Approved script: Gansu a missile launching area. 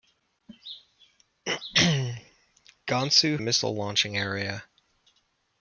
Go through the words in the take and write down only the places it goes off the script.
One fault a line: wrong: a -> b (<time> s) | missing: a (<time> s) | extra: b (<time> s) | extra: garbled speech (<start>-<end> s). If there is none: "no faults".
no faults